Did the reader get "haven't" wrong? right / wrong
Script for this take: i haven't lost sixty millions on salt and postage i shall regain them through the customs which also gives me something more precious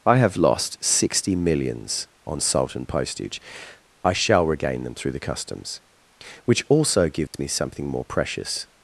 wrong